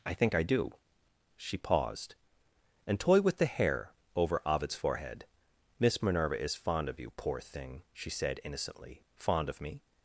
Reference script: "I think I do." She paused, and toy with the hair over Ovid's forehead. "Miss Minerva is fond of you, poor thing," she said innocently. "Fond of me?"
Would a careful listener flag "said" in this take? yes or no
no